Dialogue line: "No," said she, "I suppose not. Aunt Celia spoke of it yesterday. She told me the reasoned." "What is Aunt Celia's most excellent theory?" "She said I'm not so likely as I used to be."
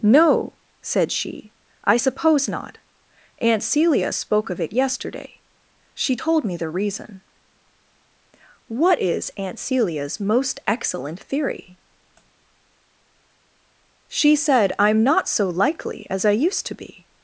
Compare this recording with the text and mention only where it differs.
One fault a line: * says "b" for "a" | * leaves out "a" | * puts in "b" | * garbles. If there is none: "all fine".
* says "reason" for "reasoned"